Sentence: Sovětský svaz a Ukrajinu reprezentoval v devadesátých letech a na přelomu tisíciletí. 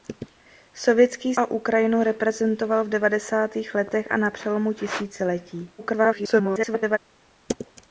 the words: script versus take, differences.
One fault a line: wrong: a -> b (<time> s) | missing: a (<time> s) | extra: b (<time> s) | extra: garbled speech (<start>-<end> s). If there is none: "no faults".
missing: svaz (1.4 s)
extra: garbled speech (5.8-7.0 s)